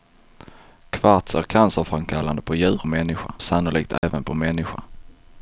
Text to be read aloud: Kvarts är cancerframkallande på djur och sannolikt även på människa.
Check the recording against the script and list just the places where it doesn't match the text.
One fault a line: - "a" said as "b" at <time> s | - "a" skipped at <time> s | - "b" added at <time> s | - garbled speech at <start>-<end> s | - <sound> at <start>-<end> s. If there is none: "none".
- "och" said as "människa" at 2.8 s
- dropout at 4.0-4.0 s